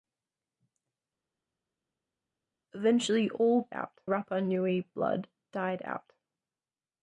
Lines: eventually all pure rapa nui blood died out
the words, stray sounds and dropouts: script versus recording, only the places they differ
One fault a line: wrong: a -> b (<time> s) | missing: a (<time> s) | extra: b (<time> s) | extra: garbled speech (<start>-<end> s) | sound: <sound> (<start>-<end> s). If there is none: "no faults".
wrong: pure -> out (3.7 s)